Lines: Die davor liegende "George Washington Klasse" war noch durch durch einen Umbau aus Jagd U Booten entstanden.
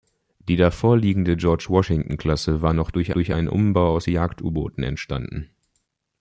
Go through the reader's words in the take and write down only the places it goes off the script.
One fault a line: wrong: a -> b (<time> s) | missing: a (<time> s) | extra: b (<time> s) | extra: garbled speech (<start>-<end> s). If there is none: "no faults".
no faults